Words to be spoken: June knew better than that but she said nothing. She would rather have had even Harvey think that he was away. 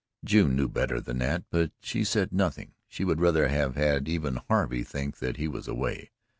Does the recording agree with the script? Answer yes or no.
yes